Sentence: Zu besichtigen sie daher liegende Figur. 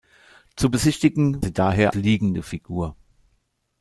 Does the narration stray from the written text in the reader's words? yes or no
no